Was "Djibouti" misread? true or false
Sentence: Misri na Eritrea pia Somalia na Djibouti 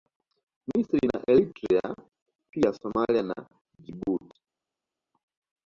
false